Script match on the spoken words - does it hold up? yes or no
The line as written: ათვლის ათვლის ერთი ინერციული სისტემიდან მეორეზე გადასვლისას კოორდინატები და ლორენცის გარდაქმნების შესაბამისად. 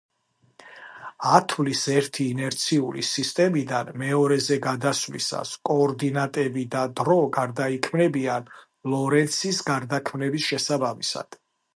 no